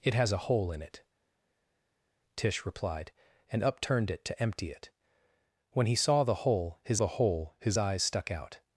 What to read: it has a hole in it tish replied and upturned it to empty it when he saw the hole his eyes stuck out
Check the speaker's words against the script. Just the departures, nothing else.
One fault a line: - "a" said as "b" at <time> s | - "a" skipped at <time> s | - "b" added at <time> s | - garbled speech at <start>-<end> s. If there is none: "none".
- "the hole his" added at 6.9 s